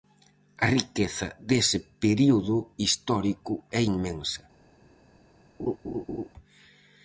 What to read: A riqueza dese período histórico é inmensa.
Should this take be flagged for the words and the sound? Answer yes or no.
yes